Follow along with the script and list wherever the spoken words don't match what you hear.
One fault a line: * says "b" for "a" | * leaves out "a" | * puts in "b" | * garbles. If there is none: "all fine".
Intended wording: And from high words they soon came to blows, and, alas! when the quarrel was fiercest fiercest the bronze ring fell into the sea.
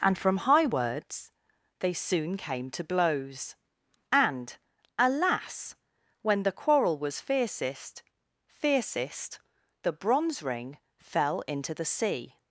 all fine